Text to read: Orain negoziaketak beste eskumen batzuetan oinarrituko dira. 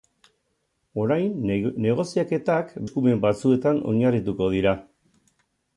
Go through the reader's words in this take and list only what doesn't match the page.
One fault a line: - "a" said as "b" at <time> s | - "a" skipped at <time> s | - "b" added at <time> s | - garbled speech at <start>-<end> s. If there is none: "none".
- "beste" skipped at 2.7 s